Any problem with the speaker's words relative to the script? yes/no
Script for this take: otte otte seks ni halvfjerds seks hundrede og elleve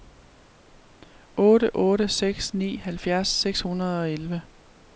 no